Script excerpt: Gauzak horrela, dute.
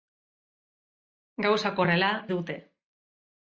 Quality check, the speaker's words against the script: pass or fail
pass